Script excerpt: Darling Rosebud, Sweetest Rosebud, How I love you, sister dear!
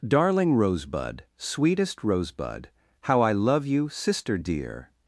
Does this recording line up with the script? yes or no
yes